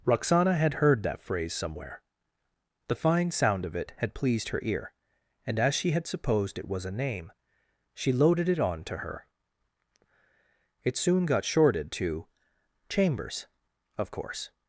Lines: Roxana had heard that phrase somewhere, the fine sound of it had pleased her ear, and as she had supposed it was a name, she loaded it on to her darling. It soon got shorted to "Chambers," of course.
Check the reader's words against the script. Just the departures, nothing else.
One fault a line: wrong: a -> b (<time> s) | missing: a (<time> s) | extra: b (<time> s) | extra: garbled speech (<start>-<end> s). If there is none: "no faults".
missing: darling (9.3 s)